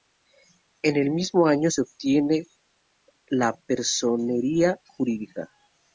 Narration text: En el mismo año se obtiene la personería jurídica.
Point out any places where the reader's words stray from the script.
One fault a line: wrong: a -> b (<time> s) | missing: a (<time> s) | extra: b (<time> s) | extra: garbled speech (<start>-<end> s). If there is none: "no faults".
no faults